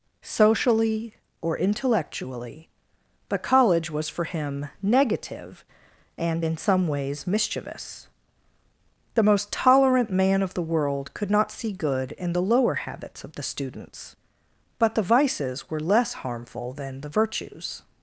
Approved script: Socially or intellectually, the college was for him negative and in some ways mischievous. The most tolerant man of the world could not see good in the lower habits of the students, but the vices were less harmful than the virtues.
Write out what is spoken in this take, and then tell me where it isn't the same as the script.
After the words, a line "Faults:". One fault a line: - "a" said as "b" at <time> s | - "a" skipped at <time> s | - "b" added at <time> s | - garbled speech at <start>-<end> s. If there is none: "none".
Socially or intellectually, but college was for him negative and in some ways mischievous. The most tolerant man of the world could not see good in the lower habits of the students, but the vices were less harmful than the virtues.
Faults:
- "the" said as "but" at 3.3 s